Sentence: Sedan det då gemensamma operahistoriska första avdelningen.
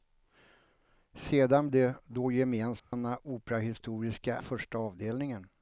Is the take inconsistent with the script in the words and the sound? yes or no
yes